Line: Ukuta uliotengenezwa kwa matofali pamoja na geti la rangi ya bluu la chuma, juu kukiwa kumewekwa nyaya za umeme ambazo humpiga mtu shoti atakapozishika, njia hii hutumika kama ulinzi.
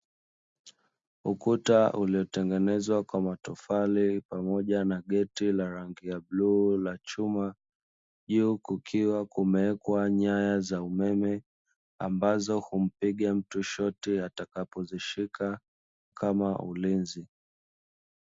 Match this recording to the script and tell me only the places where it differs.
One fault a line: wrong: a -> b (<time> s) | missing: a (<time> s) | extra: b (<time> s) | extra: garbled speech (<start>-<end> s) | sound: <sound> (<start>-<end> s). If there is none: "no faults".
missing: njia hii hutumika (15.6 s)